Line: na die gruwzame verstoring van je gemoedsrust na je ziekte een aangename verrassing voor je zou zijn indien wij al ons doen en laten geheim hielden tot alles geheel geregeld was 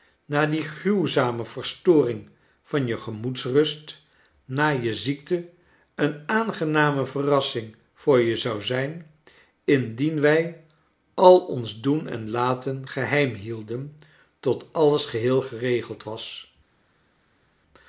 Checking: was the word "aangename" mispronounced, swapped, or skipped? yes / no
no